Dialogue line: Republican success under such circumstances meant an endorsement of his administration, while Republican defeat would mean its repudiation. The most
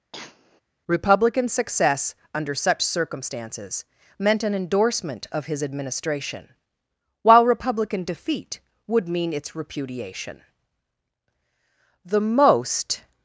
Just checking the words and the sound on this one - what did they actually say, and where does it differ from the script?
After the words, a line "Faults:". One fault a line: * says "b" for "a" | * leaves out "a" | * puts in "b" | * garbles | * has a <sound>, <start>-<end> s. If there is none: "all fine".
Republican success under such circumstances meant an endorsement of his administration, while Republican defeat would mean its repudiation. The most
Faults:
* has a cough, 0.1-0.6 s